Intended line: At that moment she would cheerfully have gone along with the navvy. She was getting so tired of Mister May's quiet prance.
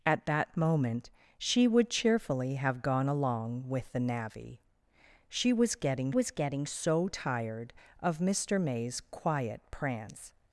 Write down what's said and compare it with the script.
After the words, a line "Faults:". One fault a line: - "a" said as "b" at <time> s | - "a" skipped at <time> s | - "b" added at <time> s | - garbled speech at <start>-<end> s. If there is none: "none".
At that moment she would cheerfully have gone along with the navvy. She was getting was getting so tired of Mister May's quiet prance.
Faults:
- "was getting" added at 6.1 s